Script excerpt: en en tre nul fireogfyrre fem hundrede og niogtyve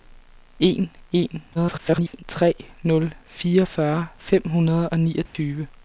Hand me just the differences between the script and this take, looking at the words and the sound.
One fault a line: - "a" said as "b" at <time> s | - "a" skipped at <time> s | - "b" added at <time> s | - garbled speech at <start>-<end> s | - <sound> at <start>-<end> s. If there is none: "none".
- garbled speech at 1.5-2.2 s
- dropout at 5.3-5.3 s